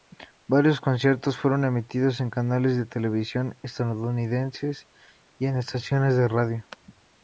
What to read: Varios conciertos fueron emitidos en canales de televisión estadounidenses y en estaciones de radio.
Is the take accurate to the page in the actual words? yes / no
yes